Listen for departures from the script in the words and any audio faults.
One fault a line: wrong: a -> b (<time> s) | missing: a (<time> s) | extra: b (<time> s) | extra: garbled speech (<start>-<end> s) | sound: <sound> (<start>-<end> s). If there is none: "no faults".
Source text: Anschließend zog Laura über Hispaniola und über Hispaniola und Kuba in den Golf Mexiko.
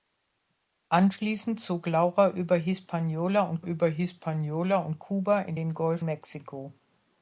no faults